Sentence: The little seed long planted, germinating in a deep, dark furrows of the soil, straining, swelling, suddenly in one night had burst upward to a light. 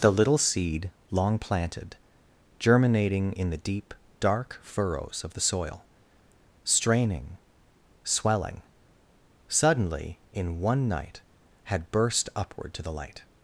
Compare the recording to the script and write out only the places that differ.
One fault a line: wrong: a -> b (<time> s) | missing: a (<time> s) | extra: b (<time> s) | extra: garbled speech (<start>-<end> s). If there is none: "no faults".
wrong: a -> the (3.5 s)
wrong: a -> the (12.8 s)